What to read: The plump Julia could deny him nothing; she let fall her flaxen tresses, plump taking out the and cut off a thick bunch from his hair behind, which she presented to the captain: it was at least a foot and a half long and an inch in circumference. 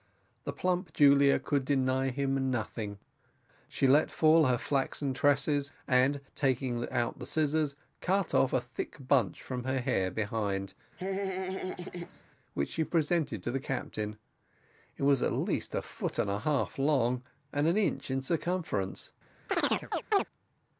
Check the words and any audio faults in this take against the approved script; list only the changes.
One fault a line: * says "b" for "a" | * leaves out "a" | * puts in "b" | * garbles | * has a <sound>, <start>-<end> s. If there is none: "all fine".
* says "and" for "plump"
* says "scissors" for "and"
* says "her" for "his"
* has a laugh, 11.0-12.2 s
* has a chirp, 19.5-20.2 s